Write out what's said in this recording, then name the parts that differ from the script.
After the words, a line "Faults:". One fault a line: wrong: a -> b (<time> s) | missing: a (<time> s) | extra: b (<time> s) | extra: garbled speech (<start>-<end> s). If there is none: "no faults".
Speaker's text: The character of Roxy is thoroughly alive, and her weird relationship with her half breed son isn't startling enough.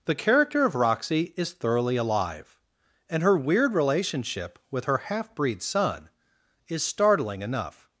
The character of Roxy is thoroughly alive, and her weird relationship with her half breed son is startling enough.
Faults:
wrong: isn't -> is (6.7 s)